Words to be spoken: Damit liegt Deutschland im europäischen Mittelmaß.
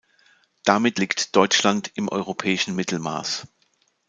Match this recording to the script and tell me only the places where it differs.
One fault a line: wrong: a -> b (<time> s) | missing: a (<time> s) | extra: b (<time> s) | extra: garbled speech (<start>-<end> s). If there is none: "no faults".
no faults